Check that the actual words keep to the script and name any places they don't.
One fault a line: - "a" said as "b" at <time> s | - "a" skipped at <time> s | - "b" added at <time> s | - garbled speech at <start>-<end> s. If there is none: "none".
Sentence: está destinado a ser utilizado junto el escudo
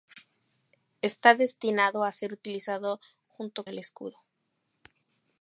none